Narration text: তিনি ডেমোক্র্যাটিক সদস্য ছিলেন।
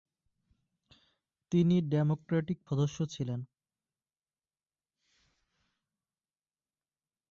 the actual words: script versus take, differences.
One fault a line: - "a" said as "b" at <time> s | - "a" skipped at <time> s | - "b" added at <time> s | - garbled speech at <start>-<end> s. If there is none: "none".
none